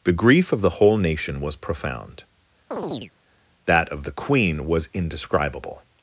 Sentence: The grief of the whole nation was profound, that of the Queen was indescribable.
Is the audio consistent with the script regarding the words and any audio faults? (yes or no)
no